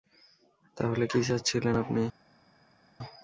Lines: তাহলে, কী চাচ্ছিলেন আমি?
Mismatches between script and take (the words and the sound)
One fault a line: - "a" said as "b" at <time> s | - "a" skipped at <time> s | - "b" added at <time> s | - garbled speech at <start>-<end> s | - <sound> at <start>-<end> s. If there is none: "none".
- "আমি" said as "আপনি" at 1.8 s